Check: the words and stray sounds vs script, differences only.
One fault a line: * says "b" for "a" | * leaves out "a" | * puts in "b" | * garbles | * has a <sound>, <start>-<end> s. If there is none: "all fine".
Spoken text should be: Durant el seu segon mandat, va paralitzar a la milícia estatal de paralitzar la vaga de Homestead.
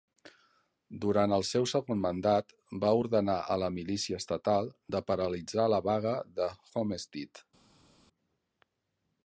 * says "ordenar" for "paralitzar"